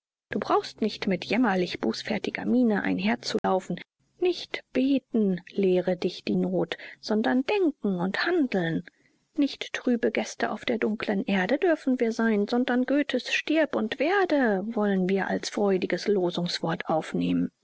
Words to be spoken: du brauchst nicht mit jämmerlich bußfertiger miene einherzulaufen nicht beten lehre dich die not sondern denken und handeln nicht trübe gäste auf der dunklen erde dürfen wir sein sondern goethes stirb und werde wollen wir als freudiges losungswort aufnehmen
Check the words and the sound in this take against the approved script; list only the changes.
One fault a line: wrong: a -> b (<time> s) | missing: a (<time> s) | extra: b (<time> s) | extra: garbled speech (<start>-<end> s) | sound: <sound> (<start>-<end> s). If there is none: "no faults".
sound: dropout (3.4-3.4 s)